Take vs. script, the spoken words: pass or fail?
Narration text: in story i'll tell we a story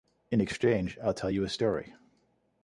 fail